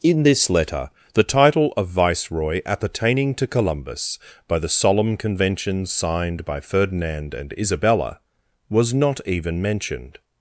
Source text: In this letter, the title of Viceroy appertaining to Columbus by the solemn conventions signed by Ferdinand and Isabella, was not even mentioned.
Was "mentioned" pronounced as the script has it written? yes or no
yes